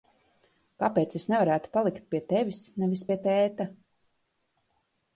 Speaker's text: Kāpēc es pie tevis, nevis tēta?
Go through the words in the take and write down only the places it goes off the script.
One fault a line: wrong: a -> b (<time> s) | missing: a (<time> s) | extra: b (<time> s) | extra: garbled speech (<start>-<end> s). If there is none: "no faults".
extra: nevarētu palikt (1.3 s)
extra: pie (3.1 s)